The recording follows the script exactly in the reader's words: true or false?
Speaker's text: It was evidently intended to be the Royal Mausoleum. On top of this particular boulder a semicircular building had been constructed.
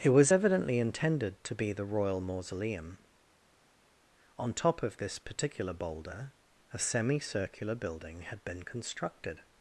true